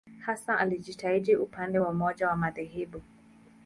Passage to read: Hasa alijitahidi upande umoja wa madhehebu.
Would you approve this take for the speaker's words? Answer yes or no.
no